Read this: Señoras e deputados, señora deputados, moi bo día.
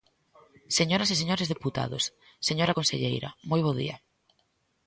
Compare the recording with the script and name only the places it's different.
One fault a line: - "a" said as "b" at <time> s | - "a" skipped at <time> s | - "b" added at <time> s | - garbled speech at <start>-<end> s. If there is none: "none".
- "señores" added at 1.2 s
- "deputados" said as "conselleira" at 2.8 s